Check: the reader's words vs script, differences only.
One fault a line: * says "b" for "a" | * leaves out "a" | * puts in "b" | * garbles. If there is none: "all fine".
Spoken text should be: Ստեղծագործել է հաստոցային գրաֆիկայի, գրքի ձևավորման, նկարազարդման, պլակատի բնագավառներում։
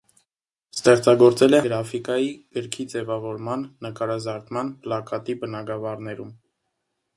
* leaves out "հաստոցային"